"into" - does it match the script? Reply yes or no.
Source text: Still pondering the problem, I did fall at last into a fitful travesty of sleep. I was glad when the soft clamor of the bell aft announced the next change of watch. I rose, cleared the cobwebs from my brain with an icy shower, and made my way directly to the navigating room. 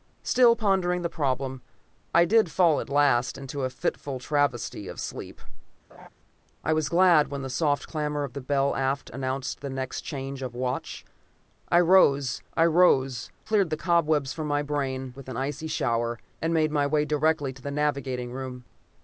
yes